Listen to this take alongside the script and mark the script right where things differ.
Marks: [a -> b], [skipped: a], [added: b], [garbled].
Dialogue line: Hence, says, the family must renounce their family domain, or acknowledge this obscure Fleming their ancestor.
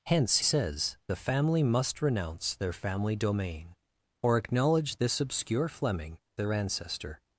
Hence, says, the family must renounce their family domain, or acknowledge this obscure Fleming their ancestor.